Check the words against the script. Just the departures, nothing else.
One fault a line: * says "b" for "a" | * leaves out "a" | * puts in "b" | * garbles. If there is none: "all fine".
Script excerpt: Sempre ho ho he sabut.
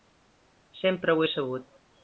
* leaves out "ho"